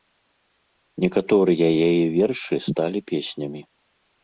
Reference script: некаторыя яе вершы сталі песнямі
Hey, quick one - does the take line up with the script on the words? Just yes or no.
yes